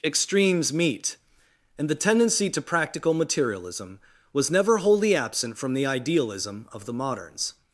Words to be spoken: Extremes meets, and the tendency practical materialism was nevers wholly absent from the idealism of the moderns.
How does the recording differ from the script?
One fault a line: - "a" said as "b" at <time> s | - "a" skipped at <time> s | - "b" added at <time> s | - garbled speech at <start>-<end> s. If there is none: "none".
- "meets" said as "meet" at 0.7 s
- "to" added at 2.5 s
- "nevers" said as "never" at 4.5 s